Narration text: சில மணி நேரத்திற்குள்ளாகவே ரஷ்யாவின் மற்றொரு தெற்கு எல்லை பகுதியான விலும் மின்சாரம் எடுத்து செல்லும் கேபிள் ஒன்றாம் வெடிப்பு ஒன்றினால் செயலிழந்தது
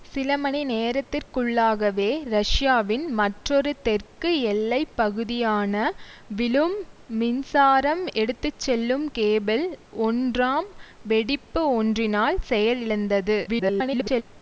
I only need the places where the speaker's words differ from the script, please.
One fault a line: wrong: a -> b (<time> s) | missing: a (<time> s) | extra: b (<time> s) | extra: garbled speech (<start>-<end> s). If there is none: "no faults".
extra: garbled speech (13.5-14.2 s)